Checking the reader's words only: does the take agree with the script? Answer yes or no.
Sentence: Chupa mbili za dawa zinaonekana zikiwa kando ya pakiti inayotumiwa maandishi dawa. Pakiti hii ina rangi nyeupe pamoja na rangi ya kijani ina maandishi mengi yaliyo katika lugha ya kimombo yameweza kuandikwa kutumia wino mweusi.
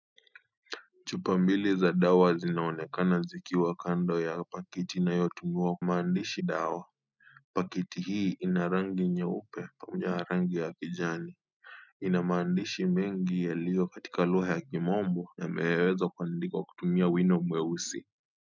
yes